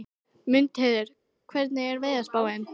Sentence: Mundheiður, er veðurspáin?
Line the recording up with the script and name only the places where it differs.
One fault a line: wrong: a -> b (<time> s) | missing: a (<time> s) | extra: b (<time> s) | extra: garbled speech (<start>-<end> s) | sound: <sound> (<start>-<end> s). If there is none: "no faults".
extra: hvernig (1.5 s)